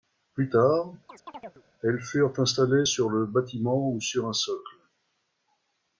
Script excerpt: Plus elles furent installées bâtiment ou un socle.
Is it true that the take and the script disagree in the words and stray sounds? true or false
true